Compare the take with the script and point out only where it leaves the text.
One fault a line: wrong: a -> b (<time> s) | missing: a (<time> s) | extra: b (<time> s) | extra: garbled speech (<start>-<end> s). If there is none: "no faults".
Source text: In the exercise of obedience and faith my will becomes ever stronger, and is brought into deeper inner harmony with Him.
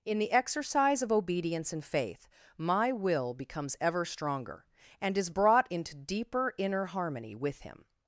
no faults